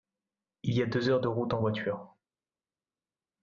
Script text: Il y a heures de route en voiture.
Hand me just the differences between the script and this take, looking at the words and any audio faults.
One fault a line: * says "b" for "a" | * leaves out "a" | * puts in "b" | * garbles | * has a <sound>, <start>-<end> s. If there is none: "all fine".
* puts in "deux"